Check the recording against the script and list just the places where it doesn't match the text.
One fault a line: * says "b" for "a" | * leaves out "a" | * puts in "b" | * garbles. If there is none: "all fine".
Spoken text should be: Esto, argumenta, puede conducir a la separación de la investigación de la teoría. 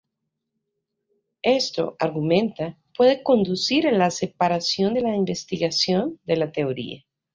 all fine